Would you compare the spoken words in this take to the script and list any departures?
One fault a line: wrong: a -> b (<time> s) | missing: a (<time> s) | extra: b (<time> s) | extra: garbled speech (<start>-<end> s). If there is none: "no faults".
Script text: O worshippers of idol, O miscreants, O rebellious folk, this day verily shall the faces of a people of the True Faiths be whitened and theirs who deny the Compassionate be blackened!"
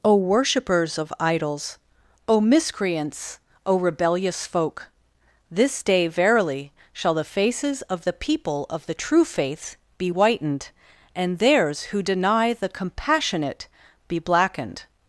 wrong: idol -> idols (1.2 s)
wrong: a -> the (8.0 s)
wrong: Faiths -> Faith (9.2 s)